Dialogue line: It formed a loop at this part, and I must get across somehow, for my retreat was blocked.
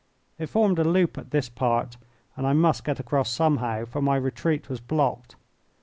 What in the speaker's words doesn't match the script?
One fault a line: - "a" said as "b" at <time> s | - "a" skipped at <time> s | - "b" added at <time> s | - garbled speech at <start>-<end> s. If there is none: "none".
none